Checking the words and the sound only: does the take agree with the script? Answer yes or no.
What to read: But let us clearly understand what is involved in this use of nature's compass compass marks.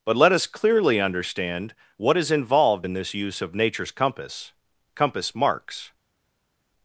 yes